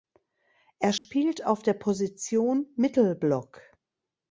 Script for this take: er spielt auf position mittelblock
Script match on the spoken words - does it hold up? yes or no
no